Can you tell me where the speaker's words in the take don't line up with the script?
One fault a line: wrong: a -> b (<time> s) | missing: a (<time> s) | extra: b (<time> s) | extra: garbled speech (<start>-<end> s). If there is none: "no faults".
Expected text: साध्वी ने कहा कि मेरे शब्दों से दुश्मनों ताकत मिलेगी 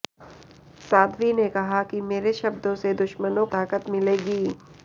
no faults